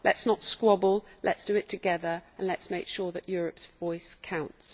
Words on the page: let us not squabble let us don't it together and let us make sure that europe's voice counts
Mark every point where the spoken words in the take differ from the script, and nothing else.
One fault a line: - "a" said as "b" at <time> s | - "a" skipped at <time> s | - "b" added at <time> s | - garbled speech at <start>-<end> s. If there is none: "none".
- "don't" said as "do" at 1.4 s